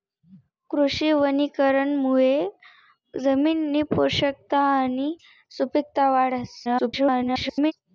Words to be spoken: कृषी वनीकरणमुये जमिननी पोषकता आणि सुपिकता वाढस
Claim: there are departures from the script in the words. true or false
true